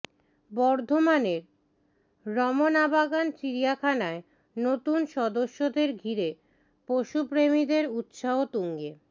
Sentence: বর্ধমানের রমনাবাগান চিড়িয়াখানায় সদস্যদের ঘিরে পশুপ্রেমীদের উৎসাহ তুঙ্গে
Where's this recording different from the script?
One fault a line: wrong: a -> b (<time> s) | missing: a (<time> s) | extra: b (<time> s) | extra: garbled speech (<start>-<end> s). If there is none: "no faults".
extra: নতুন (4.6 s)